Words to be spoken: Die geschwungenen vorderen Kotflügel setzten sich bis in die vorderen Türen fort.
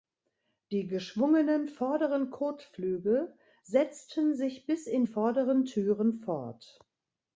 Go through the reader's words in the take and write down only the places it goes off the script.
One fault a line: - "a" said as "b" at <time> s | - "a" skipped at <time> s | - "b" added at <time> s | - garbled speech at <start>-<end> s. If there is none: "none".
- "die" skipped at 5.0 s